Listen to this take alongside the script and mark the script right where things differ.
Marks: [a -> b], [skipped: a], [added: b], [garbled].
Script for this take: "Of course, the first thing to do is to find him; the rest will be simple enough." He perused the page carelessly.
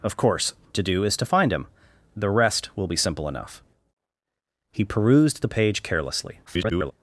"Of course, [skipped: the first thing] to do is to find him; the rest will be simple enough." He perused the page carelessly. [garbled]